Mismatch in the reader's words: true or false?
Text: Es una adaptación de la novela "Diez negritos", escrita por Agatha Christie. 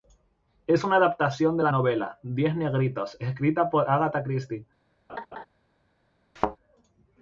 false